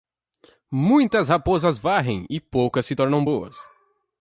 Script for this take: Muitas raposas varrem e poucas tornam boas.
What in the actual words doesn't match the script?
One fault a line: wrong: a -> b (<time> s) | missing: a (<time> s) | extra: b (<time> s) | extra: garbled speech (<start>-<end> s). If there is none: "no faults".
extra: se (2.9 s)